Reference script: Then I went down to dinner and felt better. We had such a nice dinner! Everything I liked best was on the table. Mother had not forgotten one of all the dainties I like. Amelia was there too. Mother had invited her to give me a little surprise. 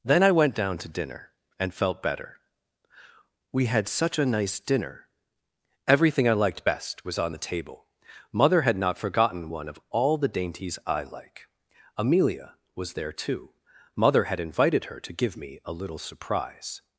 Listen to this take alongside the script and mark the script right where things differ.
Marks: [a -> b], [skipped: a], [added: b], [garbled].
Then I went down to dinner and felt better. We had such a nice dinner! Everything I liked best was on the table. Mother had not forgotten one of all the dainties I like. Amelia was there too. Mother had invited her to give me a little surprise.